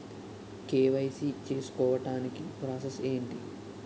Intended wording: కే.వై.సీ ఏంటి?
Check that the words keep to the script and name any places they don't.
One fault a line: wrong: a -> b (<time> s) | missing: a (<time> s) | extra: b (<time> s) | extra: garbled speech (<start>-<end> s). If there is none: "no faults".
extra: చేసుకోవటానికి ప్రాసెస్ (1.5 s)